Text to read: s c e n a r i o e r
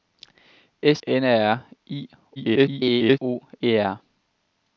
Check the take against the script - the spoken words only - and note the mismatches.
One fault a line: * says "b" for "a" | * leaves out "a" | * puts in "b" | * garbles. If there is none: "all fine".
* leaves out "c e"
* garbles